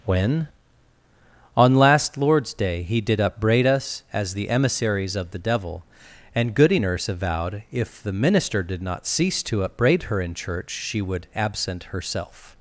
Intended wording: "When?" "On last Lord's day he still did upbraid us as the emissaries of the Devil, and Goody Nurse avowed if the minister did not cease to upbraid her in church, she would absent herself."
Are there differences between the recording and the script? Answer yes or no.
yes